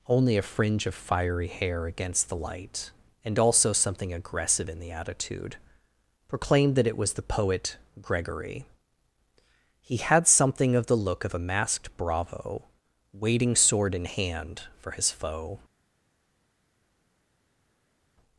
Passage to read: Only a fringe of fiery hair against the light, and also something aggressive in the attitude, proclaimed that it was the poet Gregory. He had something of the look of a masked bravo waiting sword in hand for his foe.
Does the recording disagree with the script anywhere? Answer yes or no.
no